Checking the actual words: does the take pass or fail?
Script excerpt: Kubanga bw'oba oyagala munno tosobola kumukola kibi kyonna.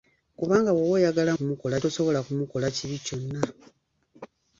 fail